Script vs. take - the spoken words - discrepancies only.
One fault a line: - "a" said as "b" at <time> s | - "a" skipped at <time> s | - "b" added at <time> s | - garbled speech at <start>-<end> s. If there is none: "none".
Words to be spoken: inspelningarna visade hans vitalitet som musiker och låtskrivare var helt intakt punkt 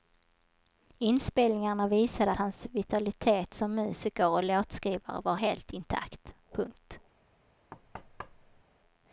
none